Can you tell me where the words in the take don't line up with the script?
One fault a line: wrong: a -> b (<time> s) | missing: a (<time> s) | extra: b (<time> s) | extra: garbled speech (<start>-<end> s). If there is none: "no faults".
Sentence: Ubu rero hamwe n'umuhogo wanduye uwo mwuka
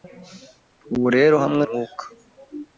missing: n'umuhogo wanduye uwo (1.6 s)